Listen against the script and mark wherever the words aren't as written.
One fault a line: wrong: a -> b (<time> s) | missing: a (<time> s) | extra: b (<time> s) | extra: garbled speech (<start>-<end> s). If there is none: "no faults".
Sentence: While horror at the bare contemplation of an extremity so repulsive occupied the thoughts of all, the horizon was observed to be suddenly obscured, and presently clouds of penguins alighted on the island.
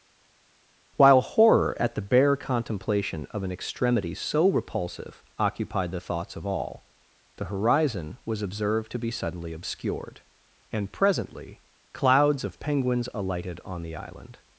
no faults